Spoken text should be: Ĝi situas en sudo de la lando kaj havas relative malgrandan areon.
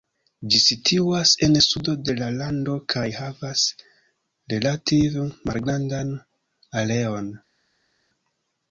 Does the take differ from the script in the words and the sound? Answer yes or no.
no